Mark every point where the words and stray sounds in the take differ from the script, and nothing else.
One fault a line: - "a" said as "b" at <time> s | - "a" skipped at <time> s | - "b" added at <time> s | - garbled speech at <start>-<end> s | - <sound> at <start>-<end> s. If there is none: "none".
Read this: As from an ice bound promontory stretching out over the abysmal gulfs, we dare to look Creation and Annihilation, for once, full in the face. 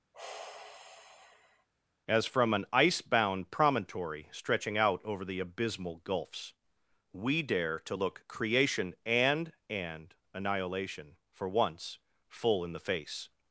- sigh at 0.1-1.7 s
- "and" added at 9.7 s